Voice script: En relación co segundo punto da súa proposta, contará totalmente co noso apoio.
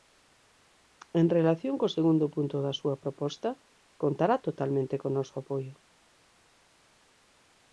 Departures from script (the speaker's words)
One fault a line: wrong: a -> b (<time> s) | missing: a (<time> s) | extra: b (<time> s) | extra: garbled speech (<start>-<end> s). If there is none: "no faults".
no faults